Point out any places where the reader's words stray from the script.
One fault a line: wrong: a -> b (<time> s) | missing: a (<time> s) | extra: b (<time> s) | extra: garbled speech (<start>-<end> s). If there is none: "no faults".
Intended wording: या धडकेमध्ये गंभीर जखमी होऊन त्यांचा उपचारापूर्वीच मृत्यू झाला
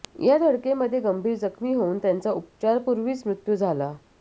no faults